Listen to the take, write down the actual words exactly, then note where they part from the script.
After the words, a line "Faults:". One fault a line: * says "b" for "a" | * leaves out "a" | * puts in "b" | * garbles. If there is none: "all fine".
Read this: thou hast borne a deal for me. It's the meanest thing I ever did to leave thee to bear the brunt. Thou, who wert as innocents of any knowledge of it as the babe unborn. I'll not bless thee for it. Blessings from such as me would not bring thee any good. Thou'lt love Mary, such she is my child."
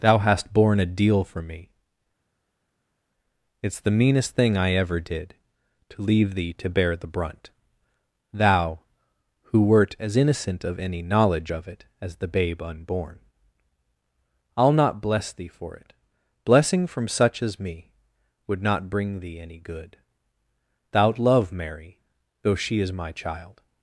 thou hast borne a deal for me. It's the meanest thing I ever did to leave thee to bear the brunt. Thou, who wert as innocent of any knowledge of it as the babe unborn. I'll not bless thee for it. Blessing from such as me would not bring thee any good. Thou'lt love Mary, though she is my child."
Faults:
* says "innocent" for "innocents"
* says "Blessing" for "Blessings"
* says "though" for "such"